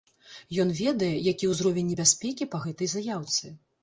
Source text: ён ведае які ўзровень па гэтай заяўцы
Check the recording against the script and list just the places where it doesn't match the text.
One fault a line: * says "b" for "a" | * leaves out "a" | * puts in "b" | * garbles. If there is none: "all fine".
* puts in "небяспекі"